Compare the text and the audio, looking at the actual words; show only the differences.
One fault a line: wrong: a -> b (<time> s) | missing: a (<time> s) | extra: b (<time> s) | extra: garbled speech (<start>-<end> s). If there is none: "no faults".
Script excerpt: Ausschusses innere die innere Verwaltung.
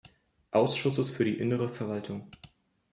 wrong: innere -> für (1.1 s)